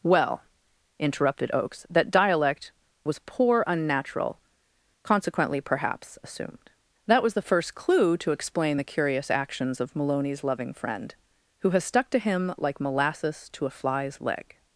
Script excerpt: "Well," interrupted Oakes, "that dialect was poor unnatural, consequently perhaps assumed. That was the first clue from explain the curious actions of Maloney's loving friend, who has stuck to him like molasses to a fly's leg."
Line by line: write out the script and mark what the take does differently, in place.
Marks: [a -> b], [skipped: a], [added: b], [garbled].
"Well," interrupted Oakes, "that dialect was poor unnatural, consequently perhaps assumed. That was the first clue [from -> to] explain the curious actions of Maloney's loving friend, who has stuck to him like molasses to a fly's leg."